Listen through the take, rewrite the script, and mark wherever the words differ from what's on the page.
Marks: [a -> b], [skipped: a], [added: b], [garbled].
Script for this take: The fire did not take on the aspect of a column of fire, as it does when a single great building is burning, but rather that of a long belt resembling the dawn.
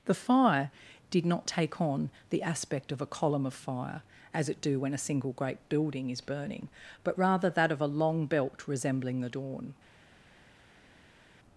The fire did not take on the aspect of a column of fire, as it [does -> do] when a single great building is burning, but rather that of a long belt resembling the dawn.